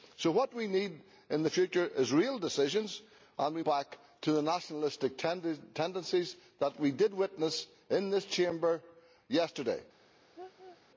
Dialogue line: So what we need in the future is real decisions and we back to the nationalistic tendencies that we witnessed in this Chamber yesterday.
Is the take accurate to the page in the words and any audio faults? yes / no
no